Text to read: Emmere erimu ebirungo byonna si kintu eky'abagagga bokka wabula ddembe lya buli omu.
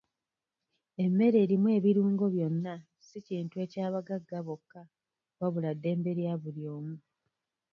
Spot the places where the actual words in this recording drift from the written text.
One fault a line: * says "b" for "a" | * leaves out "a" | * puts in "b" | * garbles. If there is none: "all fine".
all fine